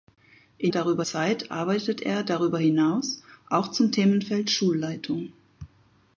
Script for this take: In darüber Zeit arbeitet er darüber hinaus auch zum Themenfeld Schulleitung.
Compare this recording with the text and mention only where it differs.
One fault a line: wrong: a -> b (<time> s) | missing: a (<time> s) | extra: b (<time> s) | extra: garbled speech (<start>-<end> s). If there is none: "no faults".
no faults